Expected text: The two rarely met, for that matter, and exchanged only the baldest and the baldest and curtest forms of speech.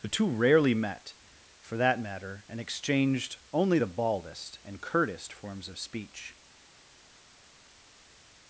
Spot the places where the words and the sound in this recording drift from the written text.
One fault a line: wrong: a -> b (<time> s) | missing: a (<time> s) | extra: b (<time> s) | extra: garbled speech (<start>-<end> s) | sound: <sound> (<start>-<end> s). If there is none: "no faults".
missing: the baldest and (4.8 s)